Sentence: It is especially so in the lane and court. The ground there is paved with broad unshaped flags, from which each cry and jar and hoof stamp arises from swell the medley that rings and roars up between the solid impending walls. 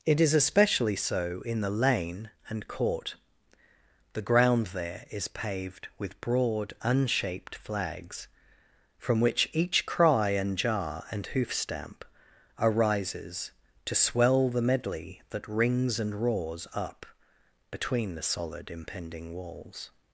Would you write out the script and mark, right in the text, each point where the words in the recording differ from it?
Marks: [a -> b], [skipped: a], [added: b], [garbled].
It is especially so in the lane and court. The ground there is paved with broad unshaped flags, from which each cry and jar and hoof stamp arises [from -> to] swell the medley that rings and roars up between the solid impending walls.